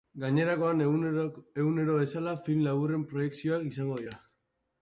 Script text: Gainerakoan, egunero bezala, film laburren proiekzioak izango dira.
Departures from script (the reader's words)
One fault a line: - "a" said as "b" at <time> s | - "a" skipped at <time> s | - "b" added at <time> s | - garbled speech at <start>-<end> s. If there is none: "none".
none